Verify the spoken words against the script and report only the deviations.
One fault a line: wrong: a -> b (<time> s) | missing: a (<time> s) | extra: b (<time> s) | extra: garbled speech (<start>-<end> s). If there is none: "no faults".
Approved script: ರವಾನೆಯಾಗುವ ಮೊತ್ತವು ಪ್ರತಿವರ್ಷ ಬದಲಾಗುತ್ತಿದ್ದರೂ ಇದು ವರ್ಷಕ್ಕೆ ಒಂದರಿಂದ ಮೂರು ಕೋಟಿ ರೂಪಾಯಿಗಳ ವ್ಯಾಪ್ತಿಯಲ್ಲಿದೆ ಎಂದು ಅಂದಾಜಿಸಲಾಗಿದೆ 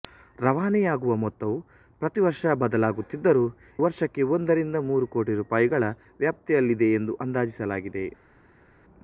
missing: ಇದು (3.5 s)